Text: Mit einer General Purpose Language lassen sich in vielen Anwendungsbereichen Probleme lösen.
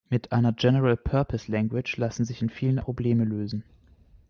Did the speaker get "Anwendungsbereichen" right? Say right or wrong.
wrong